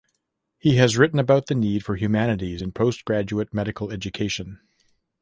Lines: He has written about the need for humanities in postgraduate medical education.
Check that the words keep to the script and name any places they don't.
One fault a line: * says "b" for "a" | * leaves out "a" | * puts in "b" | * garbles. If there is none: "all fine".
all fine